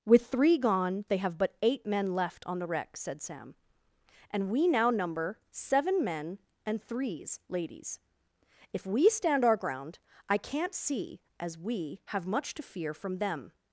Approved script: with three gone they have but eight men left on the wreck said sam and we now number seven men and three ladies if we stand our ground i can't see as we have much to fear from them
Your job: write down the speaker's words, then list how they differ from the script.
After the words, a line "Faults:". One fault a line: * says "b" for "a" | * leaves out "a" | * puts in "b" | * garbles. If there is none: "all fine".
with three gone they have but eight men left on the wreck said sam and we now number seven men and threes ladies if we stand our ground i can't see as we have much to fear from them
Faults:
* says "threes" for "three"